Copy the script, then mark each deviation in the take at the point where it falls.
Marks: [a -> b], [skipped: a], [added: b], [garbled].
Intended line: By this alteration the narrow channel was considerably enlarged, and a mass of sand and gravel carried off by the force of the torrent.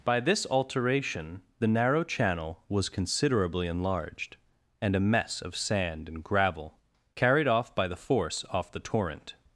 By this alteration the narrow channel was considerably enlarged, and a [mass -> mess] of sand and gravel carried off by the force [of -> off] the torrent.